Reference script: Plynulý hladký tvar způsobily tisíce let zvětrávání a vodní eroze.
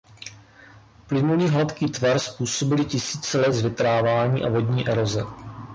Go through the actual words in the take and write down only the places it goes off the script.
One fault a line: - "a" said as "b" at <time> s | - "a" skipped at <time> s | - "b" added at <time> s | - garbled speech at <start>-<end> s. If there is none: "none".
none